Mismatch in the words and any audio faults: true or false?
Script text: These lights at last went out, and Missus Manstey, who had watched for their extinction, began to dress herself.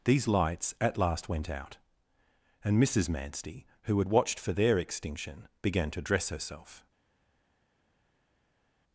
false